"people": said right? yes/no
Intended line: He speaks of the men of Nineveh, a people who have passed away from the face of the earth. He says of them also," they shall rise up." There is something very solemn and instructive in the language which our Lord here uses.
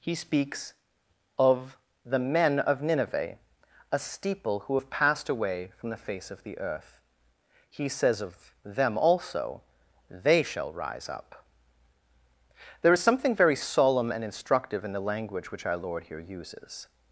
no